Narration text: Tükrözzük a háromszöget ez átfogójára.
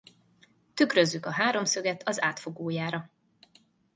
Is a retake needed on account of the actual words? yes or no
yes